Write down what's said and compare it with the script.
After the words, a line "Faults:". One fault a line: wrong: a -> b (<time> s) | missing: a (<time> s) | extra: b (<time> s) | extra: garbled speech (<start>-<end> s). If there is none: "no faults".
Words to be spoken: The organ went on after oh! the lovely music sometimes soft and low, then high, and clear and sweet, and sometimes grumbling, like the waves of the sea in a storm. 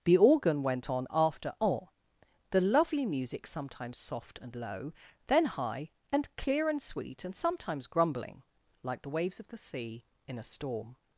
The organ went on after oh! the lovely music sometimes soft and low, then high, and clear and sweet, and sometimes grumbling, like the waves of the sea in a storm.
Faults:
no faults